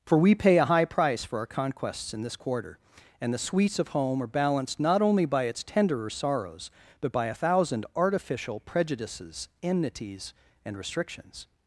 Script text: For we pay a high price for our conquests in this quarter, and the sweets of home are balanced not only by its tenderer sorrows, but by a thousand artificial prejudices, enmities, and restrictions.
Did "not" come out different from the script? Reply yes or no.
no